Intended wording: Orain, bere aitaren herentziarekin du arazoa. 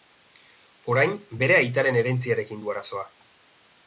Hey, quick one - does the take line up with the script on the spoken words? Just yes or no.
yes